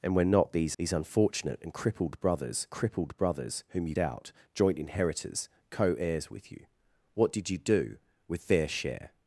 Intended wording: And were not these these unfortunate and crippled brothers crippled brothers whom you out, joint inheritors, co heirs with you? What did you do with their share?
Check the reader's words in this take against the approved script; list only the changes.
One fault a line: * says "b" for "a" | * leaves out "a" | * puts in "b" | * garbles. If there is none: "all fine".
all fine